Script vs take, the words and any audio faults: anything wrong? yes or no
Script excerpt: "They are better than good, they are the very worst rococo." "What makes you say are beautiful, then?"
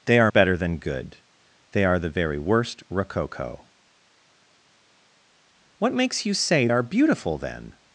no